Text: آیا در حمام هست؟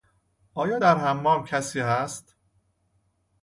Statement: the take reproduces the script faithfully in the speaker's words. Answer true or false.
false